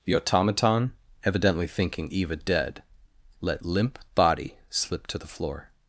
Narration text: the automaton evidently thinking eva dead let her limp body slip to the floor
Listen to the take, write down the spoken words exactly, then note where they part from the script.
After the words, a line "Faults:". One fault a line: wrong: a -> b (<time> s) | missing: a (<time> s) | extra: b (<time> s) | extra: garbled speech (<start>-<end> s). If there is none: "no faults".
the automaton evidently thinking eva dead let limp body slip to the floor
Faults:
missing: her (3.6 s)